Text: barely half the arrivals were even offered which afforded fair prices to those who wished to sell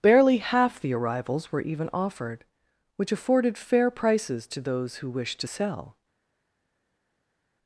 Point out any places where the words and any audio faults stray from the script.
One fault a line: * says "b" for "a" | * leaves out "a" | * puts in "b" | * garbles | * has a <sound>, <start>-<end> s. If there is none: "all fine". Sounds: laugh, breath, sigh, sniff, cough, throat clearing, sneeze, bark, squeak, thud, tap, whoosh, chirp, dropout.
all fine